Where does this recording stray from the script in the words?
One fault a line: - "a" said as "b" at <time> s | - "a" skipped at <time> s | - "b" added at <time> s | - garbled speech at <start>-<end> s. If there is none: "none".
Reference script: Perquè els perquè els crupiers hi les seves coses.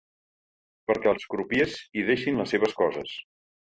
- "perquè els" skipped at 1.3 s
- "deixin" added at 2.1 s